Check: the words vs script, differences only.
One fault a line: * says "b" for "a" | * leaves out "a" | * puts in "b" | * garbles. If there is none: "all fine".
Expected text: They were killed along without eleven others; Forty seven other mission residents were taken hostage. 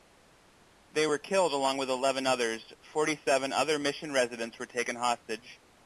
* says "with" for "without"